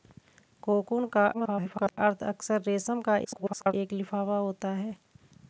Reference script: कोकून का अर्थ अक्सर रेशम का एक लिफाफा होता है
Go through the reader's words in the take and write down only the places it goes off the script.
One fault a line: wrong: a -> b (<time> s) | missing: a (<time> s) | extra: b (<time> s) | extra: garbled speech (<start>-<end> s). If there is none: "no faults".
extra: garbled speech (1.3-2.0 s)
extra: garbled speech (3.2-3.7 s)